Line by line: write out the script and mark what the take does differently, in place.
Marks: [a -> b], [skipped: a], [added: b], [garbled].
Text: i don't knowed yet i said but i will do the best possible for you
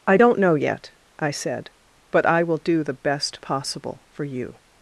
i don't [knowed -> know] yet i said but i will do the best possible for you